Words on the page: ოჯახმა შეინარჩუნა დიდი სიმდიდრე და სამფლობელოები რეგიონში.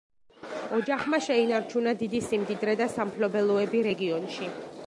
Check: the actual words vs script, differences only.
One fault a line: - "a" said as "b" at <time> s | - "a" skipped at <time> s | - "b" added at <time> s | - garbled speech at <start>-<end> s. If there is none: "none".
none